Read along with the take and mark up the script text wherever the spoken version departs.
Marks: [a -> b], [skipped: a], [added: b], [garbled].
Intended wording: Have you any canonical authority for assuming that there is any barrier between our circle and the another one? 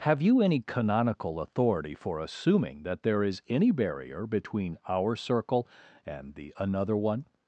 Have you any canonical authority for assuming that there is any barrier between our circle and the another one?